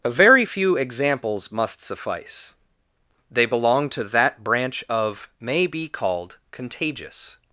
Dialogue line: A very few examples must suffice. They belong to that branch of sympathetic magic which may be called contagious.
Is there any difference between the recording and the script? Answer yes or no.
yes